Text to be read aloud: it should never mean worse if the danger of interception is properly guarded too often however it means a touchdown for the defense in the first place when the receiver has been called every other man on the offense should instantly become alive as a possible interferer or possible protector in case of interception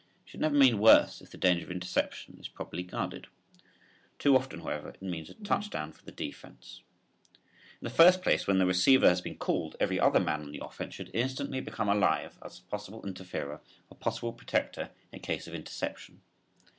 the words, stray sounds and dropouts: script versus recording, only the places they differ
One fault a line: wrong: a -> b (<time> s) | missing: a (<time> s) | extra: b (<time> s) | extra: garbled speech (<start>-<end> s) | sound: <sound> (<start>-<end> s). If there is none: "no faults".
no faults